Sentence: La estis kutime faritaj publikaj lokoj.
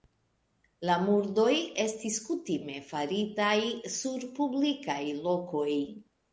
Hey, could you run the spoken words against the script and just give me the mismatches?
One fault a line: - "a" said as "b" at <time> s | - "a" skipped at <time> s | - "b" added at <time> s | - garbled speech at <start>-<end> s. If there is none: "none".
- "murdoj" added at 1.0 s
- "sur" added at 4.0 s